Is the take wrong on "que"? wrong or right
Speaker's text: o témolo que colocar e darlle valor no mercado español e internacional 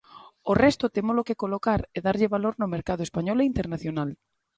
right